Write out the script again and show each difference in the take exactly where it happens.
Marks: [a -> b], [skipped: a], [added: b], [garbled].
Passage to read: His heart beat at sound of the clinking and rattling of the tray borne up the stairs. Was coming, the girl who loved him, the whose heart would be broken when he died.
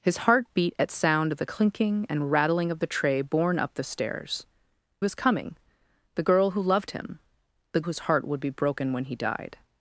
His heart beat at sound of the clinking and rattling of the tray borne up the stairs. Was coming, the girl who loved him, the whose heart would be broken when he died.